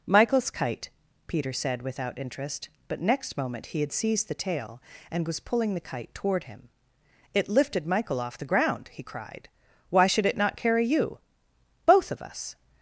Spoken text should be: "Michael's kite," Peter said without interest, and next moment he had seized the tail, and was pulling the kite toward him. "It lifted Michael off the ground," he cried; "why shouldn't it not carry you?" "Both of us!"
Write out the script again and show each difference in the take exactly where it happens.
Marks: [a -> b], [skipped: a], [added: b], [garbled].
"Michael's kite," Peter said without interest, [and -> but] next moment he had seized the tail, and was pulling the kite toward him. "It lifted Michael off the ground," he cried; "why [shouldn't -> should] it not carry you?" "Both of us!"